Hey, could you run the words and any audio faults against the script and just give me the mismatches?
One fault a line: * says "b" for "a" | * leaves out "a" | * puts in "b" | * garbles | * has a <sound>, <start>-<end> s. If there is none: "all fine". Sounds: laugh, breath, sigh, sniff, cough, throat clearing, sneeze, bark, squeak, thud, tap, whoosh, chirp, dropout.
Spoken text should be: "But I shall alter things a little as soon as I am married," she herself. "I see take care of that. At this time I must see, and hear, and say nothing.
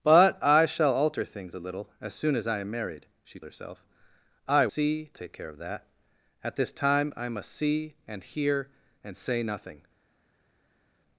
all fine